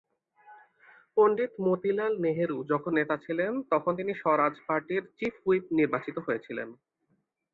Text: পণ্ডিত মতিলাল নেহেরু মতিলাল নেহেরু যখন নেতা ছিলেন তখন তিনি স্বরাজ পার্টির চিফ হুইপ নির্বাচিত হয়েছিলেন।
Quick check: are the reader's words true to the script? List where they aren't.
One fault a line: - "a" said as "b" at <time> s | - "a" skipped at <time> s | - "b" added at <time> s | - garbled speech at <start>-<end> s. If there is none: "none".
- "মতিলাল নেহেরু" skipped at 2.6 s